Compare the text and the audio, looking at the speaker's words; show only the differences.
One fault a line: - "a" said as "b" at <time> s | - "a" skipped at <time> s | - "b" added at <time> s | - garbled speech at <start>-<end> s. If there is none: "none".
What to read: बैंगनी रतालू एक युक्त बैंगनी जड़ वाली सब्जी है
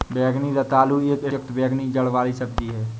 none